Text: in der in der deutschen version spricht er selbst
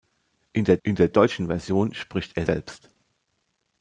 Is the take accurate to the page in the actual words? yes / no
yes